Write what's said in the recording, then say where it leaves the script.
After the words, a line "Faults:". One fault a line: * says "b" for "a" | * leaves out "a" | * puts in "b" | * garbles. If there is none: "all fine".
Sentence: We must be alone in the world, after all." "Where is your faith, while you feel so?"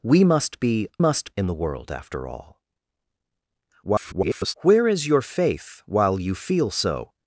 We must be must in the world, after all." [garbled] "Where is your faith, while you feel so?"
Faults:
* says "must" for "alone"
* garbles